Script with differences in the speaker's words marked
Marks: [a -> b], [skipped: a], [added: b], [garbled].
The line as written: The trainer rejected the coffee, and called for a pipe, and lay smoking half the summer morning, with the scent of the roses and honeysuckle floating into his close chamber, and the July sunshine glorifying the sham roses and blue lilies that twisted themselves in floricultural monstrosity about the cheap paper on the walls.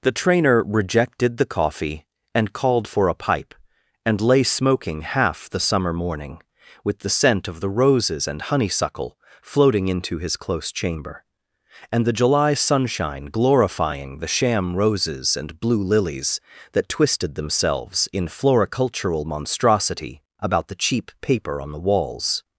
The trainer rejected the coffee, and called for a pipe, and lay smoking half the summer morning, with the scent of the roses and honeysuckle floating into his close chamber, and the July sunshine glorifying the sham roses and blue lilies that twisted themselves in floricultural monstrosity about the cheap paper on the walls.